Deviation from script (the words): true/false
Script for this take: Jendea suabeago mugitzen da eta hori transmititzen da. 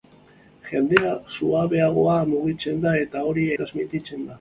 false